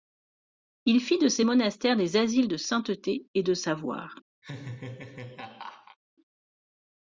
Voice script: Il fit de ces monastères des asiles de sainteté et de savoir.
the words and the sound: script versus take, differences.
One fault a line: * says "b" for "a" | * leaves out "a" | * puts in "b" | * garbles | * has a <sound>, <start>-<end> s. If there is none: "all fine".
* has a laugh, 4.4-6.0 s